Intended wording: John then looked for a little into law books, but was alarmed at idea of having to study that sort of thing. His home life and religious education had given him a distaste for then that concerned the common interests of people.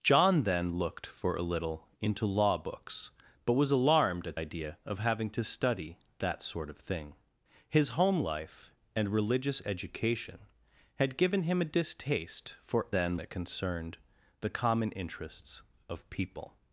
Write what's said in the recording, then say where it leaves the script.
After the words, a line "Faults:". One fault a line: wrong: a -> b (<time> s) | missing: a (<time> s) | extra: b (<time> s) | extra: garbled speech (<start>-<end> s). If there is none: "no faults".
John then looked for a little into law books, but was alarmed at idea of having to study that sort of thing. His home life and religious education had given him a distaste for then that concerned the common interests of people.
Faults:
no faults